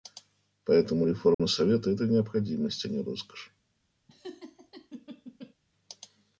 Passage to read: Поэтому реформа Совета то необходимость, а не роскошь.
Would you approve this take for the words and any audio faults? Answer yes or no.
no